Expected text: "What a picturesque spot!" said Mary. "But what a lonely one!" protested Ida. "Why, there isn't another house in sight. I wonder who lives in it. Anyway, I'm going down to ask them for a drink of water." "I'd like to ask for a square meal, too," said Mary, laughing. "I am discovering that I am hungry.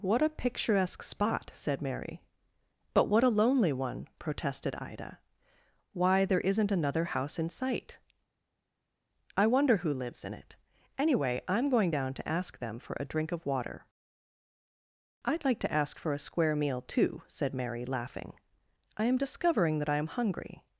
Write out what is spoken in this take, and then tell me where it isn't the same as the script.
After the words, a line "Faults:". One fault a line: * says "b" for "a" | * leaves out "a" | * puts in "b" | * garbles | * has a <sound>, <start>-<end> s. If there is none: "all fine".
"What a picturesque spot!" said Mary. "But what a lonely one!" protested Ida. "Why, there isn't another house in sight. I wonder who lives in it. Anyway, I'm going down to ask them for a drink of water." "I'd like to ask for a square meal, too," said Mary, laughing. "I am discovering that I am hungry.
Faults:
all fine